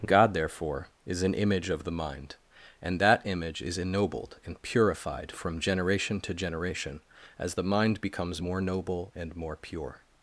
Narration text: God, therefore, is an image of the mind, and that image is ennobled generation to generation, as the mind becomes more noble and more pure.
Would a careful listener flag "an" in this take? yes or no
no